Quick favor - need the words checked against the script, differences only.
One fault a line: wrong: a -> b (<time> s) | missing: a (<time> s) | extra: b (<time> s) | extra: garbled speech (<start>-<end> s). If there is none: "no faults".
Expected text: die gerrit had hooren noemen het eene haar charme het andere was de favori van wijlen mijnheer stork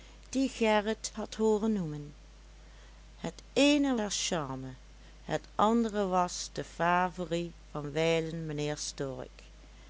no faults